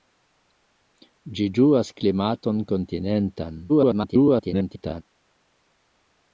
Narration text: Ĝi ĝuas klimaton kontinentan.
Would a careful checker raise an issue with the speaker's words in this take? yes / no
yes